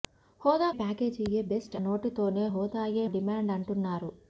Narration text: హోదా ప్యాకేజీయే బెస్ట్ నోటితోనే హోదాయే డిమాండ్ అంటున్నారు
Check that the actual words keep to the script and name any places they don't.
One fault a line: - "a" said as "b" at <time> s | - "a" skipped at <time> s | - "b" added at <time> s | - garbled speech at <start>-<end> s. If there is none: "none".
none